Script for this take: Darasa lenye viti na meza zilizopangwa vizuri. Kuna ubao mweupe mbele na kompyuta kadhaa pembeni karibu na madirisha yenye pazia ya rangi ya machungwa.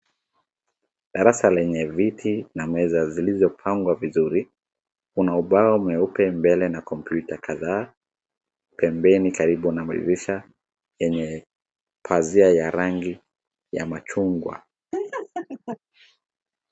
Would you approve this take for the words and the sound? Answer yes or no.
no